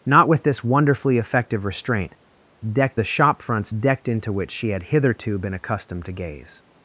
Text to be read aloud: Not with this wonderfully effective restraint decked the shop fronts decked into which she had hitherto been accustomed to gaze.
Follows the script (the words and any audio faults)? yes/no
yes